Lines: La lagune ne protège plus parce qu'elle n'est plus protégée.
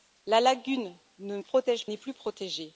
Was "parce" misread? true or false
true